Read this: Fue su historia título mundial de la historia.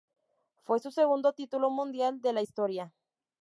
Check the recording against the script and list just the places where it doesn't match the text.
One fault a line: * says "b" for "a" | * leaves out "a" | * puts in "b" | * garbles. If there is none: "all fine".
* says "segundo" for "historia"